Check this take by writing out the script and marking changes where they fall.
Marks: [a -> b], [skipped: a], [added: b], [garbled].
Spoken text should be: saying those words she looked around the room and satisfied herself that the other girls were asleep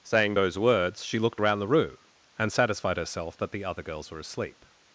saying those words she looked around the room and satisfied herself that the other girls were asleep